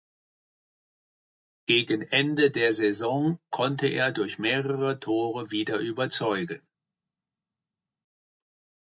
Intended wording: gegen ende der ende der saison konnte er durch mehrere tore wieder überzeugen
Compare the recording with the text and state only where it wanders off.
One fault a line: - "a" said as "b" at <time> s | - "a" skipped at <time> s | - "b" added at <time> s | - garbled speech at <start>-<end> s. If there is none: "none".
- "ende der" skipped at 2.7 s